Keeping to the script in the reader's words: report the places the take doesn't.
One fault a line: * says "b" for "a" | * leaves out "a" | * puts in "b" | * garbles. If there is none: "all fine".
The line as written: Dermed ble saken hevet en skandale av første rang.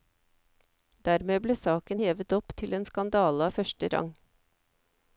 * puts in "opp til"